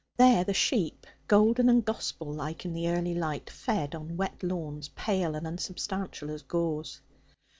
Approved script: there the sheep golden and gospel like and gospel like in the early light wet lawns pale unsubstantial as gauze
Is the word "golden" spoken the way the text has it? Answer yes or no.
yes